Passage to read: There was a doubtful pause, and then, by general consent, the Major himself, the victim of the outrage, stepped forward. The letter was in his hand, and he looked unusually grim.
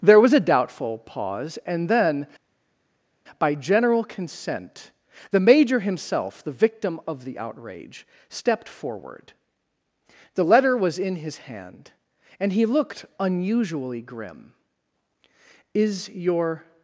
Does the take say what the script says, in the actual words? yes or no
no